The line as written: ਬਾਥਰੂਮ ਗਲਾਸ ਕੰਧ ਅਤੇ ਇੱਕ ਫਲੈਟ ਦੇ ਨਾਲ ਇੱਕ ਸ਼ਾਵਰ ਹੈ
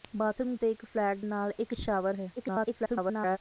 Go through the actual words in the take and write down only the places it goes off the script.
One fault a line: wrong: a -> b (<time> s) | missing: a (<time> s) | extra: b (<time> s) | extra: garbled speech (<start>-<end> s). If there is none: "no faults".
missing: ਗਲਾਸ ਕੰਧ (0.6 s)
missing: ਦੇ (1.2 s)
extra: garbled speech (2.4-3.4 s)